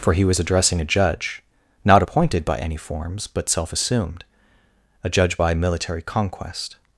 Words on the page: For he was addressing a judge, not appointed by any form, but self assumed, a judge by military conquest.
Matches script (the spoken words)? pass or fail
fail